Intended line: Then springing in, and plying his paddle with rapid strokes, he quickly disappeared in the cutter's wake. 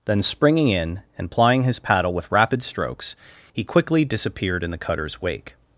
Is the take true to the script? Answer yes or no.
yes